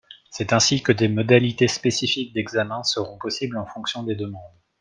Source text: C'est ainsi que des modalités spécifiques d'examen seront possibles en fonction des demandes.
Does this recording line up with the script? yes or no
yes